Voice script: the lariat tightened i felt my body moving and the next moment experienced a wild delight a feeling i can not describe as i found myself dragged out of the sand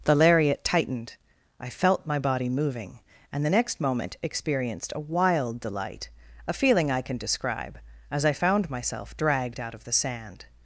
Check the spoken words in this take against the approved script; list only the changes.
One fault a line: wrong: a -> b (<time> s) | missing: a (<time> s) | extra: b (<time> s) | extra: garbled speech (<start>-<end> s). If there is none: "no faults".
missing: not (7.2 s)